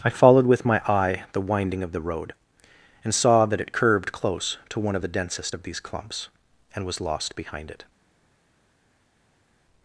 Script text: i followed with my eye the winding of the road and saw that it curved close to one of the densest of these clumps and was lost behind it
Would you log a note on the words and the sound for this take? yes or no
no